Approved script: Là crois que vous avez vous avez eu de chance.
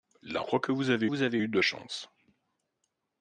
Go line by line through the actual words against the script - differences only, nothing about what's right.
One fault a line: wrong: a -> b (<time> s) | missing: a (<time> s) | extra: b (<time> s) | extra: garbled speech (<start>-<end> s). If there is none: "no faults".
no faults